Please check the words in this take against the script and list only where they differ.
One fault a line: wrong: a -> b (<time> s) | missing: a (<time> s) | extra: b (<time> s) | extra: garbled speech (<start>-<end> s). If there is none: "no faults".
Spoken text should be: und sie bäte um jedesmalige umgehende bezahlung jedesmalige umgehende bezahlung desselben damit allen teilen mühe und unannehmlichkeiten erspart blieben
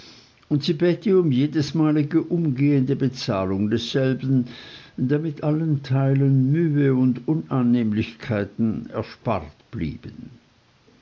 missing: jedesmalige umgehende bezahlung (3.7 s)